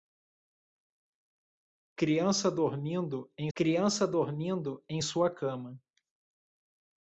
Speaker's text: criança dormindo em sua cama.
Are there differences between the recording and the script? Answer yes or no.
yes